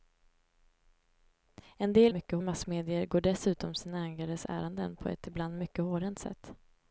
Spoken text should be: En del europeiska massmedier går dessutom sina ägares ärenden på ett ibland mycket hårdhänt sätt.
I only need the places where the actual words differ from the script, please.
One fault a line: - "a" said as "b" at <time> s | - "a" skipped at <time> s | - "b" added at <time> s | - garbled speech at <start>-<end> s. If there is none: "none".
- "europeiska" said as "mycket" at 2.1 s